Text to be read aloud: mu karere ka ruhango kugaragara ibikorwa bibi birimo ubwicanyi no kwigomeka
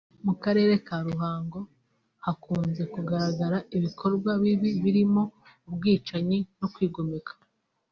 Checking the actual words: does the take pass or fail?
fail